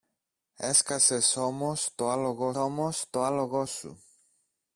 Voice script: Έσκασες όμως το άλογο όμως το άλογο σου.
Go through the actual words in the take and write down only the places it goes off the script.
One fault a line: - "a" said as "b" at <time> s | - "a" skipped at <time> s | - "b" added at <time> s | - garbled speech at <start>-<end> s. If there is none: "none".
none